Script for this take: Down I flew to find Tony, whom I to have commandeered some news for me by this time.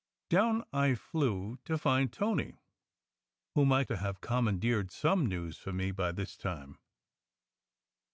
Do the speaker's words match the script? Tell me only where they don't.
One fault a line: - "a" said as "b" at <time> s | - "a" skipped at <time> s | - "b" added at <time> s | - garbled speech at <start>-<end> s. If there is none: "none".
none